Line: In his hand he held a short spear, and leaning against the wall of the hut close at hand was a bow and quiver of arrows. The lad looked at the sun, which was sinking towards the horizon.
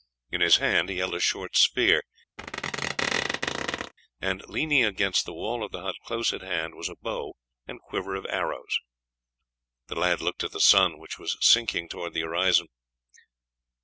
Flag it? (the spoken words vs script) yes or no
no